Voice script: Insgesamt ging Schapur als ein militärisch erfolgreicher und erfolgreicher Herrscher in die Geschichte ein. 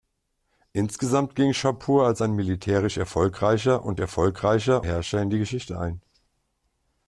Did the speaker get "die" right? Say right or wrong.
right